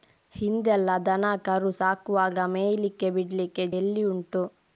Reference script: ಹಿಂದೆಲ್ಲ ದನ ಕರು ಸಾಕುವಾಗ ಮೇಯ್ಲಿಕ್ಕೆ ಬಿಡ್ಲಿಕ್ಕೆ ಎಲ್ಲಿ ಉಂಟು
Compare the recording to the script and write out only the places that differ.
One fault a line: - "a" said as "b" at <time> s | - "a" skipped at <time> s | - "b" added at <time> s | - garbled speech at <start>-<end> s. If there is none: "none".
none